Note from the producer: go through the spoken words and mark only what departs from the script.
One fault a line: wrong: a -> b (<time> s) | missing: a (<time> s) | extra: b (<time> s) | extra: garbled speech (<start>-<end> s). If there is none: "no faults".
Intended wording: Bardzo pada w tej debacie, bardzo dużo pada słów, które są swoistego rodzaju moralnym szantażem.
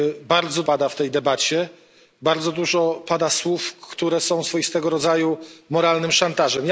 no faults